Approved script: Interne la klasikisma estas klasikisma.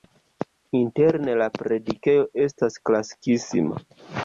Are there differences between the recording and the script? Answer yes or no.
yes